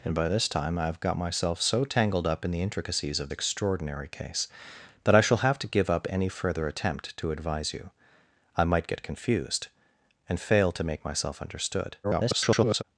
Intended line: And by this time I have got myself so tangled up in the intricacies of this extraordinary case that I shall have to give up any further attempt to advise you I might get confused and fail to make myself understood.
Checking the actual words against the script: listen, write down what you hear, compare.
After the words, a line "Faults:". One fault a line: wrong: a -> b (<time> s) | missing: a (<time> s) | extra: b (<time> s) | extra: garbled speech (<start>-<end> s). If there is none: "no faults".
And by this time I have got myself so tangled up in the intricacies of extraordinary case that I shall have to give up any further attempt to advise you I might get confused and fail to make myself understood. [garbled]
Faults:
missing: this (3.3 s)
extra: garbled speech (12.0-12.8 s)